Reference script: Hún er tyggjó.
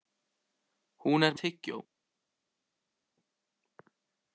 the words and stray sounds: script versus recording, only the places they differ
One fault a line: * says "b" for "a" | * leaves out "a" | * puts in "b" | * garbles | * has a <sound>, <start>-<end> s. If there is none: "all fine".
all fine